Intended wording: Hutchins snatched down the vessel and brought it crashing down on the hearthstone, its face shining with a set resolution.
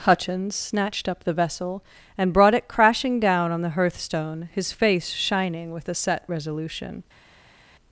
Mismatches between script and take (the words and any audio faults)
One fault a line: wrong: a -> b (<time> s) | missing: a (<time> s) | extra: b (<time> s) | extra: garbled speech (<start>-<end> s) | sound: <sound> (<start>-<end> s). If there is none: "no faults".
wrong: down -> up (1.1 s)
wrong: its -> his (4.5 s)